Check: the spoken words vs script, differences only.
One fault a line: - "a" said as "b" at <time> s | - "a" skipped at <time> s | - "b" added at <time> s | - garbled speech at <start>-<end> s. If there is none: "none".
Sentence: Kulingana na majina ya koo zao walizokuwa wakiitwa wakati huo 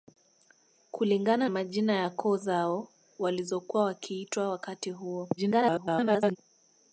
- "na" skipped at 1.5 s
- garbled speech at 5.4-6.4 s